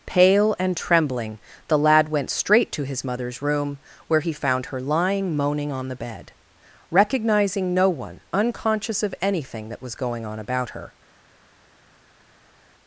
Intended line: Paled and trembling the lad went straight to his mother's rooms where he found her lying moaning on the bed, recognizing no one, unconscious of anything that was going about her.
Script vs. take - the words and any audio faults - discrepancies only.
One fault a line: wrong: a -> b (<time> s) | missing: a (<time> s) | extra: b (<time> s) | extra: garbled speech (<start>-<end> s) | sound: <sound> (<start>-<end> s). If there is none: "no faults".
wrong: Paled -> Pale (0.1 s)
wrong: rooms -> room (3.4 s)
extra: on (10.2 s)